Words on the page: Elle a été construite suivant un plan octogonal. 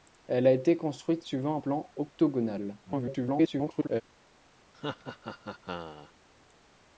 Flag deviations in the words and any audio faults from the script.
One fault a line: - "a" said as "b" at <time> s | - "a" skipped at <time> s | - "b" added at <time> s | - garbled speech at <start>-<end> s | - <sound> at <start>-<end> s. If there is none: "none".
- garbled speech at 2.9-4.0 s
- laugh at 4.7-6.1 s